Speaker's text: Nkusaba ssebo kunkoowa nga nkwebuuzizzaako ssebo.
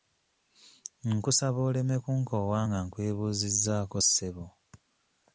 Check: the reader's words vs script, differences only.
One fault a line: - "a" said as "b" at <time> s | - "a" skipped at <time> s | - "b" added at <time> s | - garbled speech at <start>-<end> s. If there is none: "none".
- "ssebo" said as "oleme" at 1.7 s